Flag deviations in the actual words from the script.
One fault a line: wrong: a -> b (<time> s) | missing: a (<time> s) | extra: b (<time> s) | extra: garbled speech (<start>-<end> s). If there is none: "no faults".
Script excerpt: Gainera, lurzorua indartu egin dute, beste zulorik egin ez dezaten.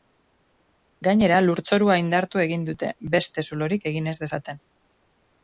no faults